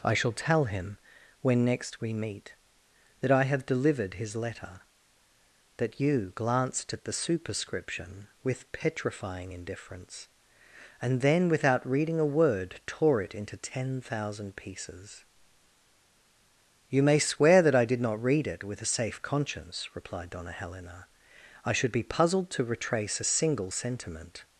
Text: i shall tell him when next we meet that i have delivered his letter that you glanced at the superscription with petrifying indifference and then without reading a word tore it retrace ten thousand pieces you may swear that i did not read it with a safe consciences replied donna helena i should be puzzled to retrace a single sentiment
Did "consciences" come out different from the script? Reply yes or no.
yes